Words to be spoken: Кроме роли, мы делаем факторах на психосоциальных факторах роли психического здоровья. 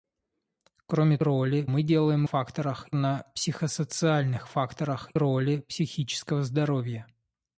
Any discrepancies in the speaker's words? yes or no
no